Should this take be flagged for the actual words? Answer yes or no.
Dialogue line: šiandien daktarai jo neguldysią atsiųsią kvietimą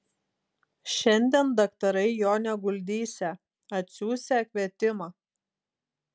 no